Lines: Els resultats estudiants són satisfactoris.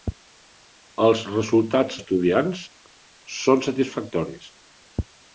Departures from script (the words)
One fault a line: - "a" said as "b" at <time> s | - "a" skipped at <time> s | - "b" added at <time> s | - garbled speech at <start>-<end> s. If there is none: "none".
none